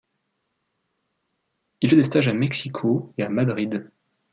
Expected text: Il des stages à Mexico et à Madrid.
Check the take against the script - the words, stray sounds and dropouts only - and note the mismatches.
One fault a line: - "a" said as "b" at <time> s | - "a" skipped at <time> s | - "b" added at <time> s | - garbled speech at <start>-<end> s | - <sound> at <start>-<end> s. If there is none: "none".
none